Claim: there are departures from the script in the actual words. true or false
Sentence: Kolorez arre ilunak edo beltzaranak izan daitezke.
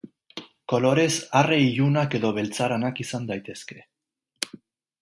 false